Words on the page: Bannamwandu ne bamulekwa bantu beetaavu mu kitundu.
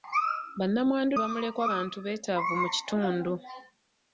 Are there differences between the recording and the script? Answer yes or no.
yes